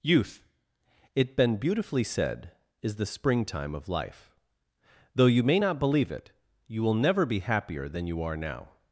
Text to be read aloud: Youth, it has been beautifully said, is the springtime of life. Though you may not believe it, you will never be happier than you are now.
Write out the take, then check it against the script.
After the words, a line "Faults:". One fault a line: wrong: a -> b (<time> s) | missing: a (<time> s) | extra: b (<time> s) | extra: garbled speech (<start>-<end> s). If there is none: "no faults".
Youth, it been beautifully said, is the springtime of life. Though you may not believe it, you will never be happier than you are now.
Faults:
missing: has (1.4 s)